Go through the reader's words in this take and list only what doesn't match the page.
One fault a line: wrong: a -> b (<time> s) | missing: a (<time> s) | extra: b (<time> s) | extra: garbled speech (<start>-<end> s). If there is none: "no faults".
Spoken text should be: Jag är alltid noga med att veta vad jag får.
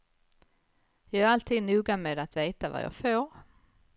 no faults